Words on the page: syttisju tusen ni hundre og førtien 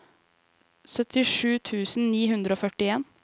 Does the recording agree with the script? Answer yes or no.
yes